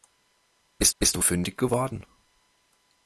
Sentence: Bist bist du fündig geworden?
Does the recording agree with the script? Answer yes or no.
yes